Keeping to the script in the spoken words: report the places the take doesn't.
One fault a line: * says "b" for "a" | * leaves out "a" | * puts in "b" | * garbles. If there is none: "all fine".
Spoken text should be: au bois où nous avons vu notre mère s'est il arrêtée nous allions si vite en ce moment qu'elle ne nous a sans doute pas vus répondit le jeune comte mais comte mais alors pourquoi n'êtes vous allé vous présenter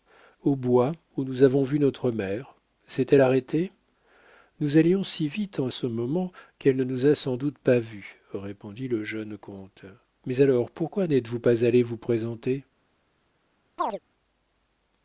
* says "elle" for "il"
* leaves out "comte mais"
* puts in "pas"